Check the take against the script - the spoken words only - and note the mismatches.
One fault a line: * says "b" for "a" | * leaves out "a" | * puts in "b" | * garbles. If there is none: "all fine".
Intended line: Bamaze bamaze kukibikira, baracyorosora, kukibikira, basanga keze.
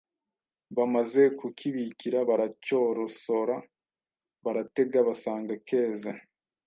* leaves out "bamaze"
* says "baratega" for "kukibikira"